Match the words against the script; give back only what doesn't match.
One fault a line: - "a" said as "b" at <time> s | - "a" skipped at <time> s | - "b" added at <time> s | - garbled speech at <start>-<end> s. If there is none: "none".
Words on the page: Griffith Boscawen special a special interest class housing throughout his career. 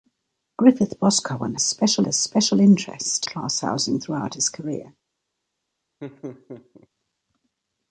none